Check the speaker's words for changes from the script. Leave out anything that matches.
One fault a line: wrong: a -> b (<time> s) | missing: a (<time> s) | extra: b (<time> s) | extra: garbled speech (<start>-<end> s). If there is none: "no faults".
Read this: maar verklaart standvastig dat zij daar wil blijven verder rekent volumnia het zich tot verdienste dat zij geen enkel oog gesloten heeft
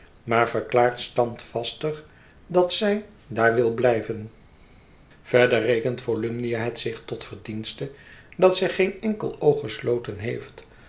no faults